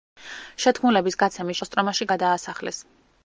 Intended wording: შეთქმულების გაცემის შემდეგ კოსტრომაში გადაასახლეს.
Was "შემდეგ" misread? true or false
true